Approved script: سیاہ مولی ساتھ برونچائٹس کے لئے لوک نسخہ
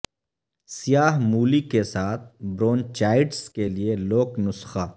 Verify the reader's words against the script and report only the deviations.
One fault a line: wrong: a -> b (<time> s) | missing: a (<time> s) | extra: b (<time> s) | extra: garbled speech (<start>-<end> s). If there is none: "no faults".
extra: کے (1.7 s)